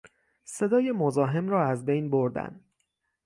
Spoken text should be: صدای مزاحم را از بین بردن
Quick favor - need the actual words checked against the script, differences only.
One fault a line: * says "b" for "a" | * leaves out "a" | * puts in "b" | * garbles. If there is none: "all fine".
all fine